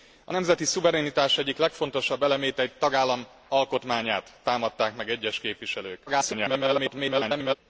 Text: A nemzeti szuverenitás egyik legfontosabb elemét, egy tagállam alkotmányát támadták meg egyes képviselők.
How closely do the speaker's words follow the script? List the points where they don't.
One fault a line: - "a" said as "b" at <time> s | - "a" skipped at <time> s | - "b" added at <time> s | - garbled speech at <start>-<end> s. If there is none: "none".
- garbled speech at 6.1-7.6 s